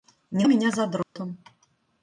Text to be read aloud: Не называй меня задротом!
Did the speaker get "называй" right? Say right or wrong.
wrong